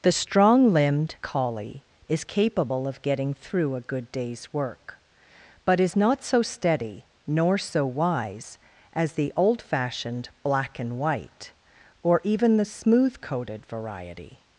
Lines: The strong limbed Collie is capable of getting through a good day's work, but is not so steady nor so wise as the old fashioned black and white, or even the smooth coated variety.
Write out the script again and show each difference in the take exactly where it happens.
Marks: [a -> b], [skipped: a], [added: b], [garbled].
The strong limbed Collie is capable of getting through a good day's work, but is not so steady nor so wise as the old fashioned black and white, or even the smooth coated variety.